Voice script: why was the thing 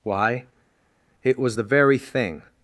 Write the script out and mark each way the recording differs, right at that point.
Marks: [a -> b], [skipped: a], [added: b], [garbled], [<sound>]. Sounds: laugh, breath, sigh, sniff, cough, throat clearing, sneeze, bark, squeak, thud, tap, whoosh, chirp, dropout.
why [added: it] was the [added: very] thing